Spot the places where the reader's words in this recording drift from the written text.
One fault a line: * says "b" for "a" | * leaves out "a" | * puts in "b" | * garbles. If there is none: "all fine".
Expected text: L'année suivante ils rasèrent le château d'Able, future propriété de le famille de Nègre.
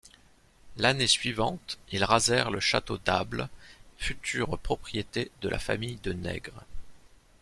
* says "la" for "le"